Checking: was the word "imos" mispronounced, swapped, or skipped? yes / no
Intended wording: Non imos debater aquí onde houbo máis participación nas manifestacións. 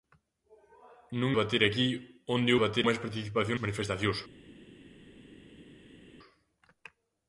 yes